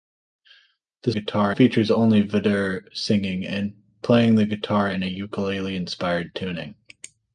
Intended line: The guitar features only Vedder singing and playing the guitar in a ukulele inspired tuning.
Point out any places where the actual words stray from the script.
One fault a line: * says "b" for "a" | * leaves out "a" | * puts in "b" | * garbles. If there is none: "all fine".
all fine